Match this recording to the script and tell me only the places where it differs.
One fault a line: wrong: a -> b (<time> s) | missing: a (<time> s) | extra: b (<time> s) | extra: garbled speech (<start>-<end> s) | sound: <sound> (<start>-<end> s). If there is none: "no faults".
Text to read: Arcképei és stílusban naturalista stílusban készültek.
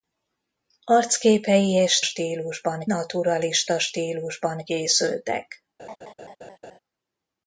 sound: laugh (5.8-6.8 s)